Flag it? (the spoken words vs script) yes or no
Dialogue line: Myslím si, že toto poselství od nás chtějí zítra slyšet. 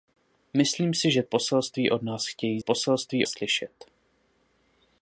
yes